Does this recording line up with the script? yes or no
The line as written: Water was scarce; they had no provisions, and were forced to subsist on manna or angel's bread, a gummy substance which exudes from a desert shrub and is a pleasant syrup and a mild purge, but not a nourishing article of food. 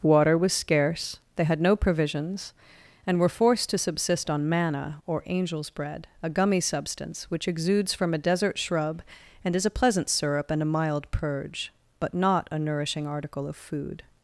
yes